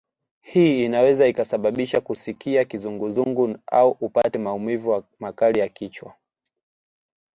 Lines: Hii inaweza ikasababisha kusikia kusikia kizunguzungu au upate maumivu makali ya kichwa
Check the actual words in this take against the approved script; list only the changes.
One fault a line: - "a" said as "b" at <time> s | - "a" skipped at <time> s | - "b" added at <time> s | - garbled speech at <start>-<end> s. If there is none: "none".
- "kusikia" skipped at 2.6 s